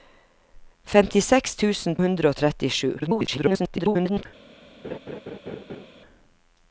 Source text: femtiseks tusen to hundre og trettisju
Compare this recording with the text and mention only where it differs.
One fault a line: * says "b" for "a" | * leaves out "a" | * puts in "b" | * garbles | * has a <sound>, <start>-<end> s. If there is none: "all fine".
* leaves out "to"
* garbles
* has a laugh, 4.8-5.9 s